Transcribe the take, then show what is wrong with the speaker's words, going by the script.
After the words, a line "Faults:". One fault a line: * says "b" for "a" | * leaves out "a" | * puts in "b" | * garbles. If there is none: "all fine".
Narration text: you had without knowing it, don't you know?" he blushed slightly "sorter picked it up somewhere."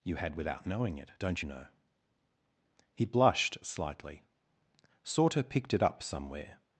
you had without knowing it, don't you know?" he blushed slightly "sorter picked it up somewhere."
Faults:
all fine